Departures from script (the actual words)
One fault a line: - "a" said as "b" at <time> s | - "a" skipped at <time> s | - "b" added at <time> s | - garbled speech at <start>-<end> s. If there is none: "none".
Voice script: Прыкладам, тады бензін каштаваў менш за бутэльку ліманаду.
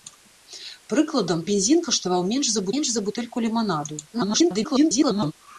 - "тады" skipped at 1.4 s
- "менш за" added at 2.8 s
- garbled speech at 4.1-5.3 s